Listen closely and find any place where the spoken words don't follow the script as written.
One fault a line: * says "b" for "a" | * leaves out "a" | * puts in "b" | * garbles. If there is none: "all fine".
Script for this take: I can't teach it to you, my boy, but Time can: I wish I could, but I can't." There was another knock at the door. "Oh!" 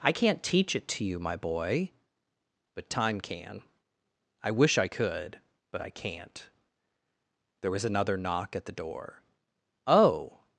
all fine